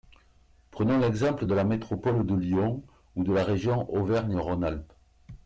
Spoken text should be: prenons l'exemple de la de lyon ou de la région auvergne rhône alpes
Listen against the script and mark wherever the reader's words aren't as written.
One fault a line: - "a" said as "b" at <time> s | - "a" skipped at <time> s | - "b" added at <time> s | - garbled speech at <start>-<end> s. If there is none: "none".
- "métropole" added at 1.7 s